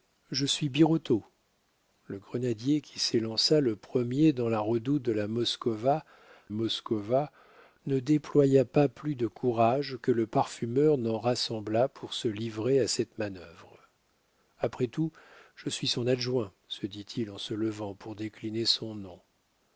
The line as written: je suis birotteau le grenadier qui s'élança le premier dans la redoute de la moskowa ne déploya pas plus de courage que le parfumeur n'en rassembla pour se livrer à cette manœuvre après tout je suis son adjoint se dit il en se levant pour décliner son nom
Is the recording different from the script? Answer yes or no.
yes